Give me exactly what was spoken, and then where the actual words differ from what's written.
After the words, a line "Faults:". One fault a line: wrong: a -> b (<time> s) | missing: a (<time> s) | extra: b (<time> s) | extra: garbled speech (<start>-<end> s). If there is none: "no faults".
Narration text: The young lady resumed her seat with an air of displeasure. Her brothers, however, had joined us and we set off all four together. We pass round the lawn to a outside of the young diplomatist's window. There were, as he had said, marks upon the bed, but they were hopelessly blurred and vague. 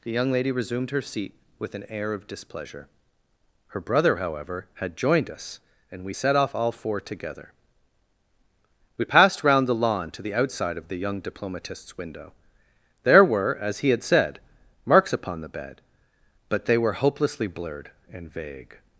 The young lady resumed her seat with an air of displeasure. Her brother, however, had joined us and we set off all four together. We passed round the lawn to the outside of the young diplomatist's window. There were, as he had said, marks upon the bed, but they were hopelessly blurred and vague.
Faults:
wrong: brothers -> brother (3.8 s)
wrong: pass -> passed (9.0 s)
wrong: a -> the (10.2 s)